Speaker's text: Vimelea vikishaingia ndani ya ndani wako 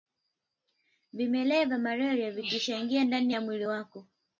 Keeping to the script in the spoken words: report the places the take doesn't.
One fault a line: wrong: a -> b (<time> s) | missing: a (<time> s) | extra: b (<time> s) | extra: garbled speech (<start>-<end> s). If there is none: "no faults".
extra: vya malaria (1.6 s)
wrong: ndani -> mwili (3.4 s)